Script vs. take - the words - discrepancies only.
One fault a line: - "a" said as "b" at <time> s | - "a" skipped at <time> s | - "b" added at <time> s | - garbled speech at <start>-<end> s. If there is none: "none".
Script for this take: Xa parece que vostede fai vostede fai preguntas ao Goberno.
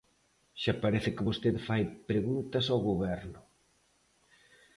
- "vostede fai" skipped at 1.8 s